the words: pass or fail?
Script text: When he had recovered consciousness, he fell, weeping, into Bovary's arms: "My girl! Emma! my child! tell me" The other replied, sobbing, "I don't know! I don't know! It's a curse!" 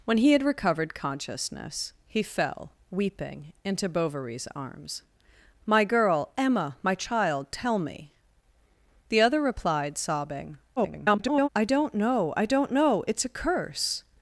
fail